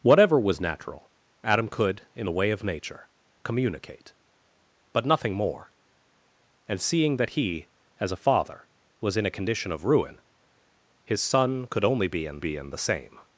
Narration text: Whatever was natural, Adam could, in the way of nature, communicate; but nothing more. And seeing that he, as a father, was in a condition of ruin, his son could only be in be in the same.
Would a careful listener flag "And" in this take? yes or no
no